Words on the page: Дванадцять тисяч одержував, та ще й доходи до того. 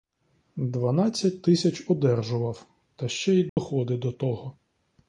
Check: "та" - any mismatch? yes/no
no